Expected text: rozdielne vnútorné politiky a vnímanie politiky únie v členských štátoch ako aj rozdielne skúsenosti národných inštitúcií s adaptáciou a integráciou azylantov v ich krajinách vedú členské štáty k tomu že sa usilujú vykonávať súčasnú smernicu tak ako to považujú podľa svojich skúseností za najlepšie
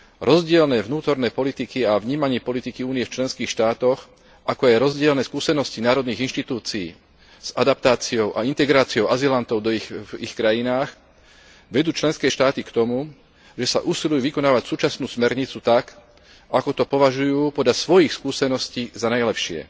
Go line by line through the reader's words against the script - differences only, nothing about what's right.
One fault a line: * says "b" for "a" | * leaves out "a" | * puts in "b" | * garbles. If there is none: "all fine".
all fine